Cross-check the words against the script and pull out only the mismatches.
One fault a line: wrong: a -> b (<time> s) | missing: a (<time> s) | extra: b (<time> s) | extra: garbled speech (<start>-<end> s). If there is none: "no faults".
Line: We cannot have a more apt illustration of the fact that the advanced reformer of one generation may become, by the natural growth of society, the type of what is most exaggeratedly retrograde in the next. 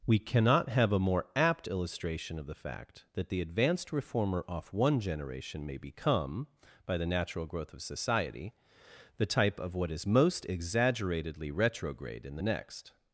wrong: of -> off (4.5 s)